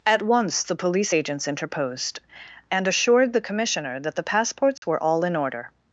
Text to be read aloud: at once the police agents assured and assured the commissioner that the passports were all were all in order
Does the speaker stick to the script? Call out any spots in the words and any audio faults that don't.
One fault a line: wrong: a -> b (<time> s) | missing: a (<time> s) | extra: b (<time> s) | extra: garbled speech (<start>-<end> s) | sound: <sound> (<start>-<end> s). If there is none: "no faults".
wrong: assured -> interposed (1.4 s)
sound: dropout (4.8-4.8 s)
missing: were all (5.2 s)